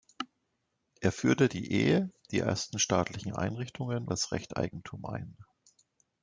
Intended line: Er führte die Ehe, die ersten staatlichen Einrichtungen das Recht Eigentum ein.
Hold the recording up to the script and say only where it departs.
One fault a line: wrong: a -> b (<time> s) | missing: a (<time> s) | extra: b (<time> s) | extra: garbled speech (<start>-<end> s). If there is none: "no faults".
no faults